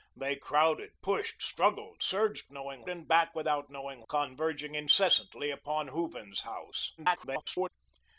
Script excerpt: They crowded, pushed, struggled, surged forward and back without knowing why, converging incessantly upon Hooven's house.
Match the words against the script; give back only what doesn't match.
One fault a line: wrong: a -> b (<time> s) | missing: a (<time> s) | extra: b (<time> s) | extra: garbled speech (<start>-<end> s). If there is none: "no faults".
wrong: forward -> knowing (2.5 s)
missing: why (4.0 s)
extra: garbled speech (7.0-7.7 s)